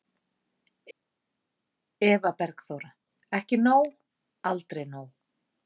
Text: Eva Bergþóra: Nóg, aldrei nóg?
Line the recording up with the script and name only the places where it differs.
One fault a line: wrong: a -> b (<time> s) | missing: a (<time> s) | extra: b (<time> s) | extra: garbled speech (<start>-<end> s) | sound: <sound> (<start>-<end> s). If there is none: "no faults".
extra: Ekki (3.4 s)